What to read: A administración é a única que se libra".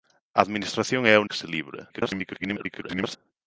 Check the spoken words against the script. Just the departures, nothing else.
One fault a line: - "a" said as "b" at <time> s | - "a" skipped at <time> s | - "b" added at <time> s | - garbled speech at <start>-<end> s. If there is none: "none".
- "única" skipped at 1.2 s
- garbled speech at 1.9-3.2 s